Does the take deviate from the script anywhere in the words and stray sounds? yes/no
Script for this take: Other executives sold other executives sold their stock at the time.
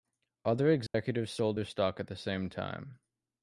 yes